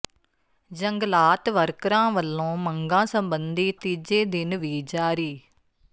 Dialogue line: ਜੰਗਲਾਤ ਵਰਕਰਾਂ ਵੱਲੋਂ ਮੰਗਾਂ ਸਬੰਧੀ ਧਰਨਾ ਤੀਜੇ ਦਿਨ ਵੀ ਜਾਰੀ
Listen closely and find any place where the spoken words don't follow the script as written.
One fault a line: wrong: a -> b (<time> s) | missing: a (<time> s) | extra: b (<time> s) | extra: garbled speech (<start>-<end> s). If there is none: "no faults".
missing: ਧਰਨਾ (3.7 s)